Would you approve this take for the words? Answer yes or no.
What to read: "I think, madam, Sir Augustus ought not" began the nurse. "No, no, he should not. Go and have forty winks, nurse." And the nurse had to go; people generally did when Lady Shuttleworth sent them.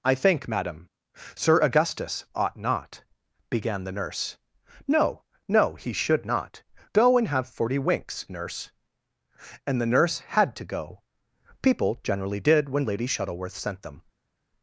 yes